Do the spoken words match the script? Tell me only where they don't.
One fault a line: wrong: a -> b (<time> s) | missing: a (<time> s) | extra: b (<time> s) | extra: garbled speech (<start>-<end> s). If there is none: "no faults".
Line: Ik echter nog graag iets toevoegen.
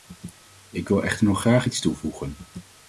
extra: wil (0.9 s)